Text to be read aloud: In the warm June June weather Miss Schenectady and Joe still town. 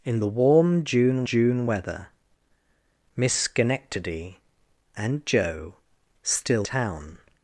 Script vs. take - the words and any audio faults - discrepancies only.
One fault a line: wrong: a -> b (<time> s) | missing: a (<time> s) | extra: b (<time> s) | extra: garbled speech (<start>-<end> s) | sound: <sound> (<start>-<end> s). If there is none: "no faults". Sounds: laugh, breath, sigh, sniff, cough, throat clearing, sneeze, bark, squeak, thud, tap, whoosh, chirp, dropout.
no faults